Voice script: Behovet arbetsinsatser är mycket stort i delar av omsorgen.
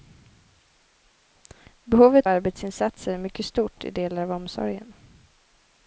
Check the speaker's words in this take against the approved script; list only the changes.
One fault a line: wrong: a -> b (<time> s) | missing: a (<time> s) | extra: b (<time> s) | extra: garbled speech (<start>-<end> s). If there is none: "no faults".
no faults